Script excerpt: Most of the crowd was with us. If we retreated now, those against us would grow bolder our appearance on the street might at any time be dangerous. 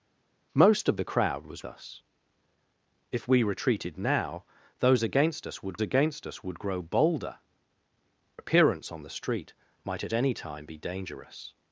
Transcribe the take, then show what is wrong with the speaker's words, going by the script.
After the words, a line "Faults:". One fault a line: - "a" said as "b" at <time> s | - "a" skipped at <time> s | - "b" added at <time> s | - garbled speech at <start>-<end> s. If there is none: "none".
Most of the crowd was us. If we retreated now, those against us would against us would grow bolder appearance on the street might at any time be dangerous.
Faults:
- "with" skipped at 1.6 s
- "against us would" added at 5.8 s
- "our" skipped at 7.4 s